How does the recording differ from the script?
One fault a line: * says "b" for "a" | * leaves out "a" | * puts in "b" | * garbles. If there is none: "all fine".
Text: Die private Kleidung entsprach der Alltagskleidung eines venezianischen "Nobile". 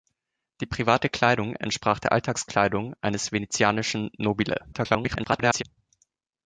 * garbles